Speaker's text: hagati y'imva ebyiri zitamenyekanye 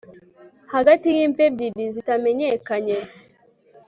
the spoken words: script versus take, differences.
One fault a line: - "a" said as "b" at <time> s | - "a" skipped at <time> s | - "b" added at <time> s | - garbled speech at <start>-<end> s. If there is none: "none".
none